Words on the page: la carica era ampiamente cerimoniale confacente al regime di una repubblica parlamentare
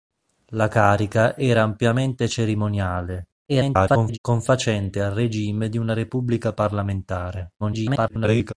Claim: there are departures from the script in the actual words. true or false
true